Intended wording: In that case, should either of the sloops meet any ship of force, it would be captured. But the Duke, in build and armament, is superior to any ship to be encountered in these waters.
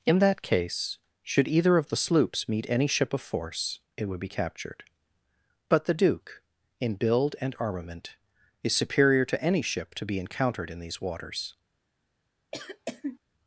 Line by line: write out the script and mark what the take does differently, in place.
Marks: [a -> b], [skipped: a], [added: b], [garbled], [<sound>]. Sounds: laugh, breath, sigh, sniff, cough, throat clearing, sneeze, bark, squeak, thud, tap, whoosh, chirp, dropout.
In that case, should either of the sloops meet any ship of force, it would be captured. But the Duke, in build and armament, is superior to any ship to be encountered in these waters. [cough]